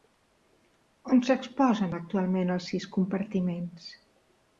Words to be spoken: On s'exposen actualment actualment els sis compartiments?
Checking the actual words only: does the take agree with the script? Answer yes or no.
no